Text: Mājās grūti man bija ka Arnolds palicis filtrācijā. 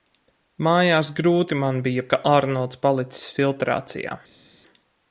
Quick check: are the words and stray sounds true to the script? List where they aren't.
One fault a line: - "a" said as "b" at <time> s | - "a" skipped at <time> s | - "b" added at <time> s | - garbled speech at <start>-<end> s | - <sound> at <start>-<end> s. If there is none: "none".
none